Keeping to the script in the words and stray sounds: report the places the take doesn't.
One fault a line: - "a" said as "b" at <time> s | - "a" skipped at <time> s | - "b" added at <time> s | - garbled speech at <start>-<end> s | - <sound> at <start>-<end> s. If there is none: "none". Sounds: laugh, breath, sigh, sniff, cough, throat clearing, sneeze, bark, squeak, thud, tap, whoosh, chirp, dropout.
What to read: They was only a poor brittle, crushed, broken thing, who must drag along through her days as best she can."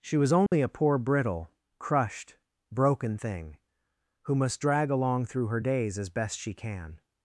- "They" said as "She" at 0.0 s
- dropout at 0.5-0.5 s